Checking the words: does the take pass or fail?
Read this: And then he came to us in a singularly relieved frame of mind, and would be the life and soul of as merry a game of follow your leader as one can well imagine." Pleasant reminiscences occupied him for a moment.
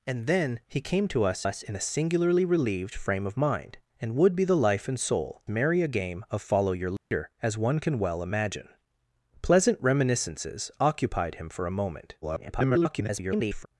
fail